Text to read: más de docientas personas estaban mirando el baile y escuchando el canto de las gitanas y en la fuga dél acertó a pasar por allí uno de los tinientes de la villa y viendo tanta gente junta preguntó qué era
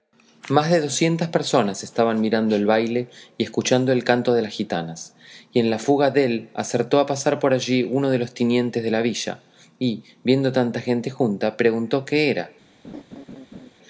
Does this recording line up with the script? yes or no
yes